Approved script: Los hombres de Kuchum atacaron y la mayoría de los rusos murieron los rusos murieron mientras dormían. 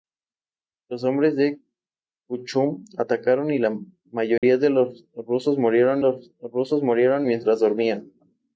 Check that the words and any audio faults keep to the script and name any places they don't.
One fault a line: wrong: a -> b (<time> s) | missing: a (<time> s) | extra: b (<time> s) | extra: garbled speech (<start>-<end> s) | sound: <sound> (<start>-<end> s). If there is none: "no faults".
sound: dropout (4.4-4.4 s)